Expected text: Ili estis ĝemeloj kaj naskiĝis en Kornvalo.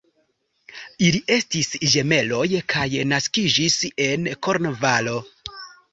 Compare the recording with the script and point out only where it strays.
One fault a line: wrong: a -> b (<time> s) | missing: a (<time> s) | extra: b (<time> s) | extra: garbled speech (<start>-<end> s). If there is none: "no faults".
no faults